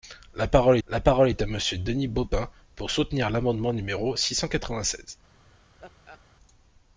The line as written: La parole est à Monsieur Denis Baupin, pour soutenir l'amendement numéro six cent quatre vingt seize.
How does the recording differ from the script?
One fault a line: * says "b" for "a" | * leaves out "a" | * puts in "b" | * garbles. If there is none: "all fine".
* puts in "la parole"